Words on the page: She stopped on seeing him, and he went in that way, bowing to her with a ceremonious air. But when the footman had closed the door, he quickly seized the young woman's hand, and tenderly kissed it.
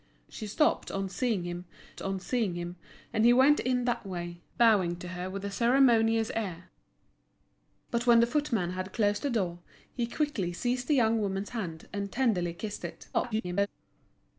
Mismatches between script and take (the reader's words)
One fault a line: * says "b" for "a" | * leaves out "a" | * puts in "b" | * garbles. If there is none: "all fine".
* puts in "on seeing him"
* garbles